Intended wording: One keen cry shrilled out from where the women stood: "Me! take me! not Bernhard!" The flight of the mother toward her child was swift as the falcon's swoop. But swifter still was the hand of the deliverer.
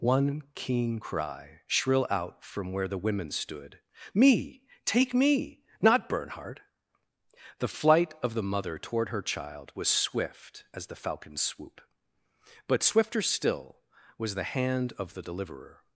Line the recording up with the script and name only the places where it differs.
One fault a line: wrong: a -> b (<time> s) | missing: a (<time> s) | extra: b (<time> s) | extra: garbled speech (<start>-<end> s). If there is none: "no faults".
wrong: shrilled -> shrill (1.6 s)